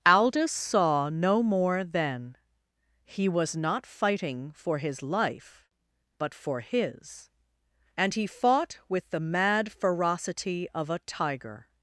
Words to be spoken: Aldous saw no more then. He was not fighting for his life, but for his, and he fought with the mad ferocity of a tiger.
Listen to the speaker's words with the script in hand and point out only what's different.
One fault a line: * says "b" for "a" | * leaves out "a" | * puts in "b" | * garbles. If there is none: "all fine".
all fine